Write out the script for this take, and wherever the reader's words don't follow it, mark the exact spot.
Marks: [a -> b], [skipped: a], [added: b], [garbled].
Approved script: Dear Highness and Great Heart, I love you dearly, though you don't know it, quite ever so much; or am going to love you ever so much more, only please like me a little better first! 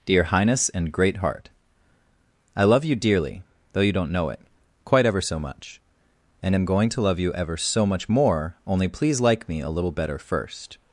Dear Highness and Great Heart, I love you dearly, though you don't know it, quite ever so much; [or -> and] am going to love you ever so much more, only please like me a little better first!